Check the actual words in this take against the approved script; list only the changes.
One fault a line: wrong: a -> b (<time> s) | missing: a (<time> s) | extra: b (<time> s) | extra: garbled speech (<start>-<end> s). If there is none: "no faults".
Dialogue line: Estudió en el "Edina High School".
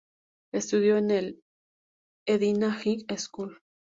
no faults